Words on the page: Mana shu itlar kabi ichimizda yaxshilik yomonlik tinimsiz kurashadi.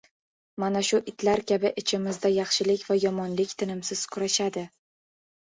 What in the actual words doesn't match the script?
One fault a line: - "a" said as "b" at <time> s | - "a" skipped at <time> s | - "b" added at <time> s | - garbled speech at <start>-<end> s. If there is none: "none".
- "va" added at 2.9 s